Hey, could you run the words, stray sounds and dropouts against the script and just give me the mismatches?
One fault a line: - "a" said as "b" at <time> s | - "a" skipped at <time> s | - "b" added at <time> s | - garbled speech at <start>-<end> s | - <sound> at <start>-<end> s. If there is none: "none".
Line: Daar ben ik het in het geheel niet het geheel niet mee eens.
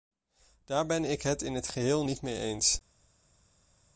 - "het geheel niet" skipped at 2.2 s